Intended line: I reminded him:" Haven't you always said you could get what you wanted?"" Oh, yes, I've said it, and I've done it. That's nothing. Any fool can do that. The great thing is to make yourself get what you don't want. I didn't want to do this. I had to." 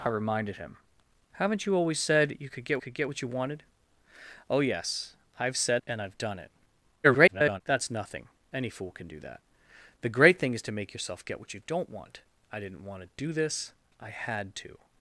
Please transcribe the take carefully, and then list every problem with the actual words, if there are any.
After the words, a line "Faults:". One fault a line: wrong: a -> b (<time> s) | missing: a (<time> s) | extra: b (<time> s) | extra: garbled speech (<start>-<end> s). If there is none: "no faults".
I reminded him:" Haven't you always said you could get could get what you wanted?"" Oh, yes, I've said and I've done it. [garbled] That's nothing. Any fool can do that. The great thing is to make yourself get what you don't want. I didn't want to do this. I had to."
Faults:
extra: could get (2.8 s)
missing: it (5.8 s)
extra: garbled speech (7.0-7.6 s)